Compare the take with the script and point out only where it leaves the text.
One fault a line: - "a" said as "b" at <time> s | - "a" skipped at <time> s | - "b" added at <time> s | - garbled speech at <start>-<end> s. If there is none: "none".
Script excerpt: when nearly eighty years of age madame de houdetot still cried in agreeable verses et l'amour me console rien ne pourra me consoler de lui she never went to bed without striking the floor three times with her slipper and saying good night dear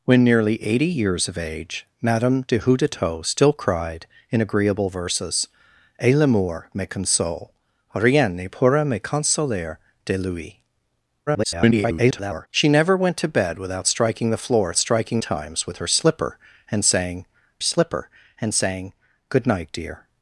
- garbled speech at 11.3-12.5 s
- "three" said as "striking" at 14.8 s
- "slipper and saying" added at 17.6 s